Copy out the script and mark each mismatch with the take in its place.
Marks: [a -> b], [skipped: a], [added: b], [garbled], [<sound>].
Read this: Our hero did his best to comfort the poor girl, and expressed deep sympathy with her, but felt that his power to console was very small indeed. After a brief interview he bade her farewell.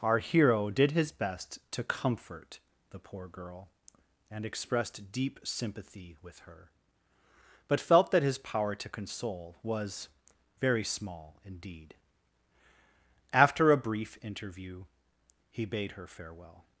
Our hero did his best to comfort the poor girl, and expressed deep sympathy with her, but felt that his power to console was very small indeed. After a brief interview he bade her farewell.